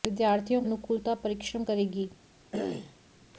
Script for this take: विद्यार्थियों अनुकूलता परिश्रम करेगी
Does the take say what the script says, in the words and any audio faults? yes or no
no